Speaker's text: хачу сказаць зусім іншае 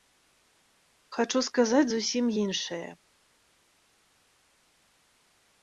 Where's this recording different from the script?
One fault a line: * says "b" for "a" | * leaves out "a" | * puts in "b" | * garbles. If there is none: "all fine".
all fine